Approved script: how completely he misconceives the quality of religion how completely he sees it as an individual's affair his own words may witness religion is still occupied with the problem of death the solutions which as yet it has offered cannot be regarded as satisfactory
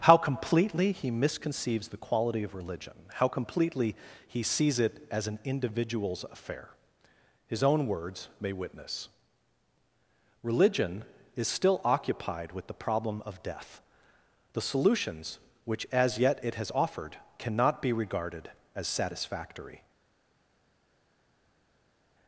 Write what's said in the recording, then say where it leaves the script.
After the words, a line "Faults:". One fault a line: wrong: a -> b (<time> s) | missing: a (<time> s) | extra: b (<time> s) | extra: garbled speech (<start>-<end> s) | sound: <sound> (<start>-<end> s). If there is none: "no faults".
how completely he misconceives the quality of religion how completely he sees it as an individual's affair his own words may witness religion is still occupied with the problem of death the solutions which as yet it has offered cannot be regarded as satisfactory
Faults:
no faults